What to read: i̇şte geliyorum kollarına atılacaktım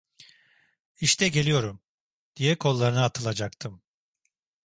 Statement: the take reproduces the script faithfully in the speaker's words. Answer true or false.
false